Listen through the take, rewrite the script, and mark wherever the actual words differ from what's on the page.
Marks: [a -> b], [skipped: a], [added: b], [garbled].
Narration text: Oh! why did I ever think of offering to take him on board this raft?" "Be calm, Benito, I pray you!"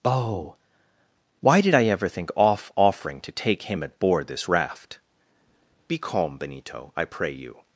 Oh! why did I ever think [of -> off] offering to take him [on -> at] board this raft?" "Be calm, Benito, I pray you!"